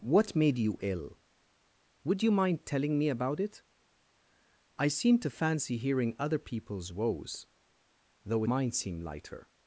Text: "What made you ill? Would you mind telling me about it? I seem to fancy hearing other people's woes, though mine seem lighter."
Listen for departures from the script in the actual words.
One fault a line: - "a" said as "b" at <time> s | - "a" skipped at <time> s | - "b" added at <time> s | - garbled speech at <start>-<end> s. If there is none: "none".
none